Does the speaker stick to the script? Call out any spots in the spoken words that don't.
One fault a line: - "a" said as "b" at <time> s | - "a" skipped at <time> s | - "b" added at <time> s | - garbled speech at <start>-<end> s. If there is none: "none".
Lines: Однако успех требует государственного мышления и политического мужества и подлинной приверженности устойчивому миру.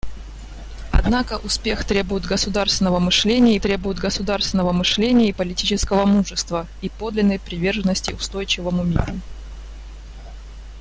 - "требует государственного мышления" added at 3.6 s